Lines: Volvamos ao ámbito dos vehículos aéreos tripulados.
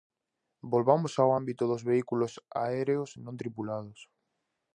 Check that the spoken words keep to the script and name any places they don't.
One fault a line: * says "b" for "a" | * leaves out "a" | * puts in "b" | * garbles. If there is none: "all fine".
* puts in "non"